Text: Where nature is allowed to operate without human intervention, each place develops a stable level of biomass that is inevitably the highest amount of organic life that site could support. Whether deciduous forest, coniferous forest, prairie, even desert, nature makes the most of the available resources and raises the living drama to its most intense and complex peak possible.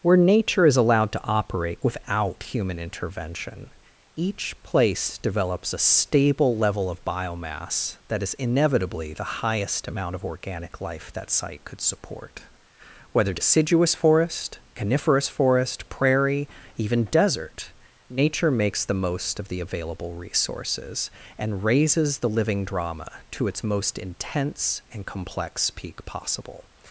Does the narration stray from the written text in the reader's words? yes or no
no